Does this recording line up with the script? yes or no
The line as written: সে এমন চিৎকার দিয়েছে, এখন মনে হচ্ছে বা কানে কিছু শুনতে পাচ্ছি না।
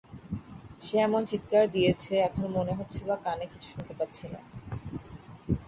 yes